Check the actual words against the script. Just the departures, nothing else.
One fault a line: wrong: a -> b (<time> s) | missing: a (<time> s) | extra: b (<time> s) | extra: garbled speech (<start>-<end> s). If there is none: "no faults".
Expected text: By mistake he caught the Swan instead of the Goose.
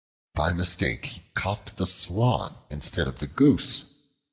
no faults